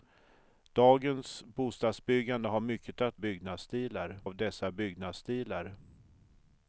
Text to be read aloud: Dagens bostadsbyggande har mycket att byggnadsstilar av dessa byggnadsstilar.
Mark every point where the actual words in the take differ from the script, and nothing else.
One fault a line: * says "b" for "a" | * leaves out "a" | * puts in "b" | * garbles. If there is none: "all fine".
all fine